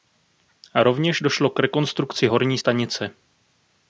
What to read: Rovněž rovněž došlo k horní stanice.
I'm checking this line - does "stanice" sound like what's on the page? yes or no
yes